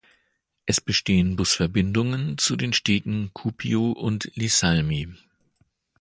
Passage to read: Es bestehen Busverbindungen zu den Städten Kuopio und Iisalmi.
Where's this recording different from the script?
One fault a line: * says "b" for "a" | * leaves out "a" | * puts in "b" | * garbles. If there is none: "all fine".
all fine